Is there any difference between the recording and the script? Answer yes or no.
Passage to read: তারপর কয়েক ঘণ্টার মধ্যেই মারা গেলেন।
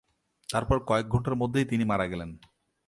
yes